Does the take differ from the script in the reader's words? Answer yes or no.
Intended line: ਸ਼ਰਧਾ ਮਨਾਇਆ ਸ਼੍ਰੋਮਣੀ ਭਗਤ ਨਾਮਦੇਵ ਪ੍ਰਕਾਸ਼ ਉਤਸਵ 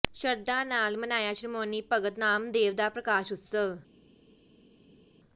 yes